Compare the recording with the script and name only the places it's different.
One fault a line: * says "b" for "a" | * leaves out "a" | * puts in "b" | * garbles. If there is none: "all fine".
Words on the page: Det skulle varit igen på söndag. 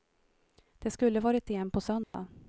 all fine